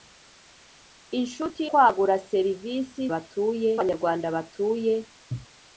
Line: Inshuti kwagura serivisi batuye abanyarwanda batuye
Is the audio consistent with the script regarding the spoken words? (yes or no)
yes